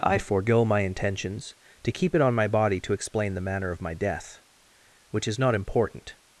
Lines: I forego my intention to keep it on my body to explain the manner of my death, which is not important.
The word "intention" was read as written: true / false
false